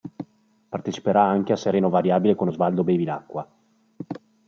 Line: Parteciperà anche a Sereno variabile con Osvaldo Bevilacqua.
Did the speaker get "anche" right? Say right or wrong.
right